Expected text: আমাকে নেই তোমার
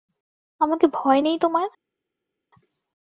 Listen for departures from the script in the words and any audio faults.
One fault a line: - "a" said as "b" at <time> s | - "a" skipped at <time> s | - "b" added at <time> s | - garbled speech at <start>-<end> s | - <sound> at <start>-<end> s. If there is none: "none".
- "ভয়" added at 0.9 s